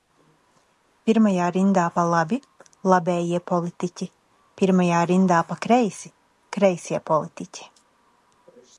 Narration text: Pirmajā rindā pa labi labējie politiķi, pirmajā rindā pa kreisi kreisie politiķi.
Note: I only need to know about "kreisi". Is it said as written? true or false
true